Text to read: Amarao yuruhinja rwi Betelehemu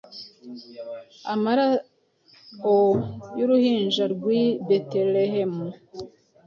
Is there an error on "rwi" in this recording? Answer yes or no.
no